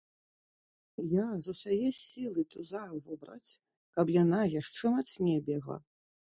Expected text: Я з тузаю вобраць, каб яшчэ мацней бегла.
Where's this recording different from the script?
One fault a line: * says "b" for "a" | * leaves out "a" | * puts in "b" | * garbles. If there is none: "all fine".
* puts in "усяе сілы"
* puts in "яна"